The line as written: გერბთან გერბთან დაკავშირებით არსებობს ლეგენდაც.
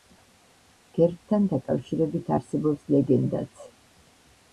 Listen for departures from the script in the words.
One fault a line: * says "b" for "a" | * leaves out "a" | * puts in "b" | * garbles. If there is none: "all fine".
* leaves out "გერბთან"